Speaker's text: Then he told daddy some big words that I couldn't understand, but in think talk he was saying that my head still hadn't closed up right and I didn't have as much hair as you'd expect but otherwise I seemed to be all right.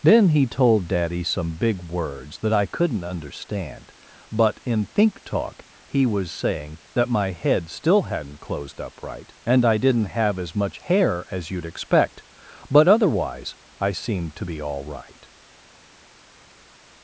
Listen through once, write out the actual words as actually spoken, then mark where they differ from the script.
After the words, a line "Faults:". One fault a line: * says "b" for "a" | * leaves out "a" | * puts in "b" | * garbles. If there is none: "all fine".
Then he told daddy some big words that I couldn't understand, but in think talk he was saying that my head still hadn't closed up right and I didn't have as much hair as you'd expect but otherwise I seemed to be all right.
Faults:
all fine